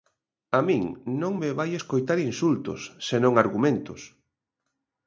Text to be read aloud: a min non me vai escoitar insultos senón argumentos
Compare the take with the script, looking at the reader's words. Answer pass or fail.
pass